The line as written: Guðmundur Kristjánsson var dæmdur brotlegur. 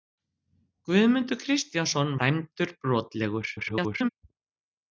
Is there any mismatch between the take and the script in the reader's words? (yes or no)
yes